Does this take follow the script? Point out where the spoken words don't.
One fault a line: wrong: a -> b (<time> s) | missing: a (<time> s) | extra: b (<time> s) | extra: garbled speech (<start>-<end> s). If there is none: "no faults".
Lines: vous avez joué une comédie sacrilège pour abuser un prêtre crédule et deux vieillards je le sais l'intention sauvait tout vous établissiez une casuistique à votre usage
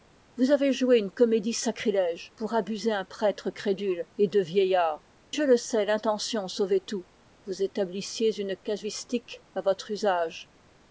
no faults